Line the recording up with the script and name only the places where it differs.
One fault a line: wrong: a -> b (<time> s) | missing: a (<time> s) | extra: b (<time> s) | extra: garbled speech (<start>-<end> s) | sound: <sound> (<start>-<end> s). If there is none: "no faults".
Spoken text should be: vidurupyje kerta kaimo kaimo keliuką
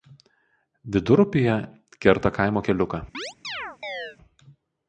missing: kaimo (2.6 s)
sound: chirp (3.1-4.2 s)